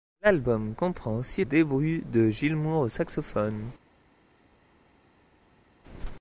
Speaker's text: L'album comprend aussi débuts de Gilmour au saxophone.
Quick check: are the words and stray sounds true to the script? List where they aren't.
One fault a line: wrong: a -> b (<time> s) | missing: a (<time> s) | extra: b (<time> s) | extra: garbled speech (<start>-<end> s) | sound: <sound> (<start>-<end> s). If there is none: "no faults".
no faults